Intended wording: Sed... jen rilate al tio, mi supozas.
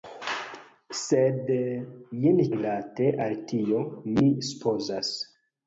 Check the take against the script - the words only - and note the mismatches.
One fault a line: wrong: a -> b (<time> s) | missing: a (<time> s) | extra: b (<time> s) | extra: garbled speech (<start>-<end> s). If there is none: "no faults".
no faults